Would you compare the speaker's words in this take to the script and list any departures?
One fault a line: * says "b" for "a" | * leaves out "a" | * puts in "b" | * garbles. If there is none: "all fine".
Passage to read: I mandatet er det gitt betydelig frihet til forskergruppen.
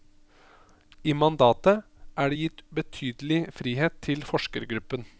all fine